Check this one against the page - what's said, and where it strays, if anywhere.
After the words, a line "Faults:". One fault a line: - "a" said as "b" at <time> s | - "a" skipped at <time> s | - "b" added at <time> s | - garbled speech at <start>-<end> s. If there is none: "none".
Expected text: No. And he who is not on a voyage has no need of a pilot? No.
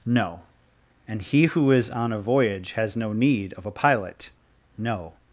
No. And he who is on a voyage has no need of a pilot? No.
Faults:
- "not" skipped at 1.9 s